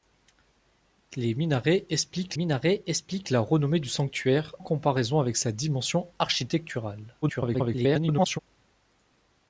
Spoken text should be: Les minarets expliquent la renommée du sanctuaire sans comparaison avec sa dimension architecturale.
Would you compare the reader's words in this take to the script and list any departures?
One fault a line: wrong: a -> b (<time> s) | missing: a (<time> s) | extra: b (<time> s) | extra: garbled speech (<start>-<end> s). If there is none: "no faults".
extra: minarets expliquent (2.3 s)
missing: sans (4.5 s)
extra: garbled speech (7.2-8.4 s)